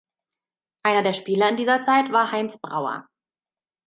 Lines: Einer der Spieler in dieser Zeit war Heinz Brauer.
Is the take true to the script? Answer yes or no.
yes